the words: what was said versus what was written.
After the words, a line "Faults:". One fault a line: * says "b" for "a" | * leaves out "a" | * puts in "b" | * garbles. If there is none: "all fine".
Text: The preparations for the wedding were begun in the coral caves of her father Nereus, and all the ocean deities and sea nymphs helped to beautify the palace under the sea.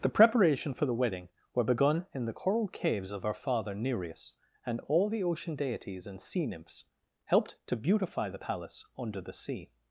The preparation for the wedding were begun in the coral caves of her father Nereus, and all the ocean deities and sea nymphs helped to beautify the palace under the sea.
Faults:
* says "preparation" for "preparations"